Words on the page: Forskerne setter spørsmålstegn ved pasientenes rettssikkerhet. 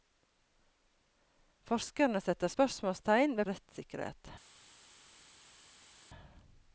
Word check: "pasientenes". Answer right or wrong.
wrong